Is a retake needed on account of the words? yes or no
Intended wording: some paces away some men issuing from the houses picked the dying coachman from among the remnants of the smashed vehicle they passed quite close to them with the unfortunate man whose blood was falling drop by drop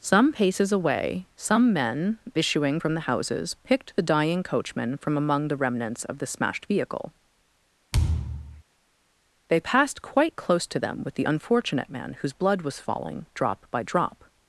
no